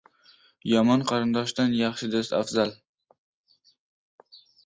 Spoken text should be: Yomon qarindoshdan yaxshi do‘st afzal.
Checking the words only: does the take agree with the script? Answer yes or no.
yes